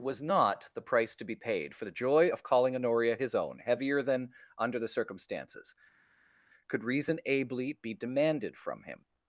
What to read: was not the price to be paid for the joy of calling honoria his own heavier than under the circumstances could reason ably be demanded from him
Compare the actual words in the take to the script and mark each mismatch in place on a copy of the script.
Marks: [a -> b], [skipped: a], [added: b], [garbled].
was not the price to be paid for the joy of calling honoria his own heavier than under the circumstances could reason ably be demanded from him